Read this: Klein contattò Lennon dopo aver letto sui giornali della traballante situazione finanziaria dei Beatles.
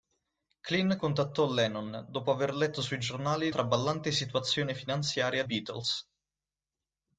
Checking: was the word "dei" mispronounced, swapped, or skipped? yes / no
yes